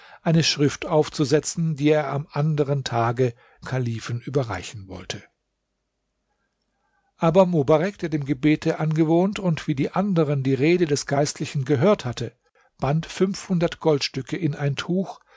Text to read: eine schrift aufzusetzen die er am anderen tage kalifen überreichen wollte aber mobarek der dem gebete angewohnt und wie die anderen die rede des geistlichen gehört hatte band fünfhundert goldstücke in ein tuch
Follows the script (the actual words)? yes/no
yes